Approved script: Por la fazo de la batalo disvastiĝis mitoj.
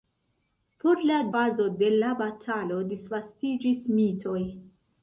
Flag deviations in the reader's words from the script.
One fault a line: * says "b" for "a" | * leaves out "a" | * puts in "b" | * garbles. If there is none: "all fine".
all fine